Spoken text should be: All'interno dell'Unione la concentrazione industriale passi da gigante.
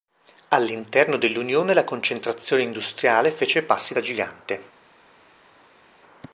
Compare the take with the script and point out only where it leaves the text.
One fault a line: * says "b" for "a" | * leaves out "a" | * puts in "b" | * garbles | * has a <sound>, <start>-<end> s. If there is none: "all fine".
* puts in "fece"